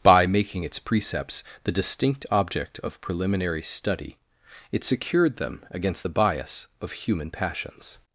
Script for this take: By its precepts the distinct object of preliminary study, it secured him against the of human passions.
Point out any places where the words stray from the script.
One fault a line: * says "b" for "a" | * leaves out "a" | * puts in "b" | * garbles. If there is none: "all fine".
* puts in "making"
* says "them" for "him"
* puts in "bias"